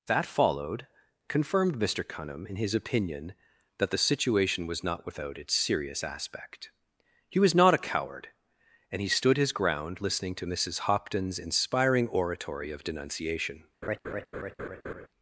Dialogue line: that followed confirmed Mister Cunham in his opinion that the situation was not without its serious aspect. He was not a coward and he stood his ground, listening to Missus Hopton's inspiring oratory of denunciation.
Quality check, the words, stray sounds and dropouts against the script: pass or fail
fail